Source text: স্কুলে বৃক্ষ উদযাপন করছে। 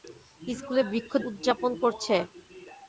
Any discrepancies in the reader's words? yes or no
no